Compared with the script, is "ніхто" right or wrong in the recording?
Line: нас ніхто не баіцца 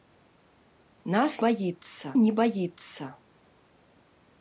wrong